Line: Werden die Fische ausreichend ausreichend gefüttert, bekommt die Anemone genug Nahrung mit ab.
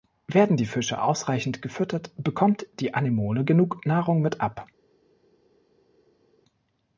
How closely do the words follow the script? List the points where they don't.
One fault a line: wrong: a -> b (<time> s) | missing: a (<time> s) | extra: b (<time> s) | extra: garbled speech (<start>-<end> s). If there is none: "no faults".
missing: ausreichend (1.6 s)